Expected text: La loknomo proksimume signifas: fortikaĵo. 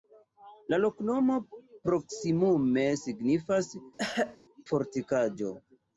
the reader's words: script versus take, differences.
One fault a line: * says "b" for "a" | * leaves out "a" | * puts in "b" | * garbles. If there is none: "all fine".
all fine